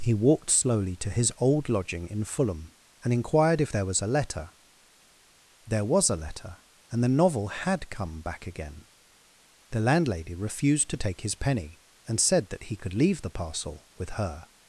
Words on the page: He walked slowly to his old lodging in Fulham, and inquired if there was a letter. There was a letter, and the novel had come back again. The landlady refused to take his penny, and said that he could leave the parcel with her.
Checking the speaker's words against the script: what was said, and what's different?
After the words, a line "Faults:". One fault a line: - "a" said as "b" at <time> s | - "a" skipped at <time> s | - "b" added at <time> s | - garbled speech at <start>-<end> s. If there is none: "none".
He walked slowly to his old lodging in Fulham, and inquired if there was a letter. There was a letter, and the novel had come back again. The landlady refused to take his penny, and said that he could leave the parcel with her.
Faults:
none